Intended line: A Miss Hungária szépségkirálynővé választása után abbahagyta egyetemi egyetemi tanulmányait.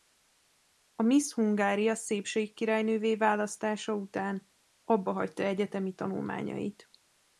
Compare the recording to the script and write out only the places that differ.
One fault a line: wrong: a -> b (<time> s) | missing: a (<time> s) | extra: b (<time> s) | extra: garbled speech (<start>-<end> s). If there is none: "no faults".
missing: egyetemi (5.9 s)